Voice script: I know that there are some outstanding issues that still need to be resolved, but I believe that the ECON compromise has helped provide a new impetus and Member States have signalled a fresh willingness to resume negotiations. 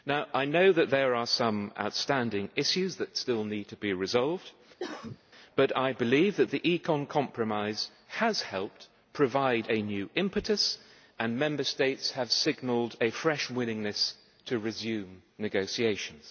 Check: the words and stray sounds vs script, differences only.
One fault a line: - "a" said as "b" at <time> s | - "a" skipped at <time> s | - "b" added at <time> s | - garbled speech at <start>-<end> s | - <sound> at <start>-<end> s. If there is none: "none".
- cough at 4.8-5.2 s